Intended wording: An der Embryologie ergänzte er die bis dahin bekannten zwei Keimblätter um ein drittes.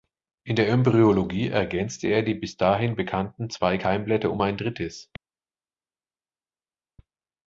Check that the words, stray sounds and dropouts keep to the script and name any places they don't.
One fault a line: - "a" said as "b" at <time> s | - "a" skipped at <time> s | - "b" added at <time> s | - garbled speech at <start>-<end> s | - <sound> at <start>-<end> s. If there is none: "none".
- "An" said as "In" at 0.4 s